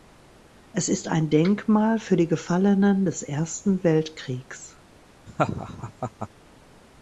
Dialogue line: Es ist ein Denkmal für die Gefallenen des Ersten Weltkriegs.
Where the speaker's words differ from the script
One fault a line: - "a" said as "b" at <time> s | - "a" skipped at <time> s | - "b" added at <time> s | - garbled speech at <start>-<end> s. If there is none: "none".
none